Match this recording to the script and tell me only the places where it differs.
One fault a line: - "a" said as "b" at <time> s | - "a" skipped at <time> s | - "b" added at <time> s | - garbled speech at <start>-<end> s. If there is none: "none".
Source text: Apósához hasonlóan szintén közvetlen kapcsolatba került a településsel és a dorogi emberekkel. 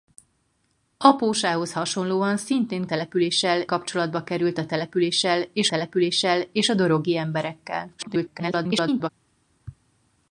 - "közvetlen" said as "településsel" at 2.9 s
- "településsel és" added at 5.7 s
- garbled speech at 8.0-9.1 s